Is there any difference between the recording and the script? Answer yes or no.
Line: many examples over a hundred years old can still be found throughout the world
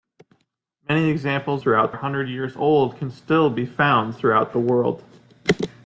yes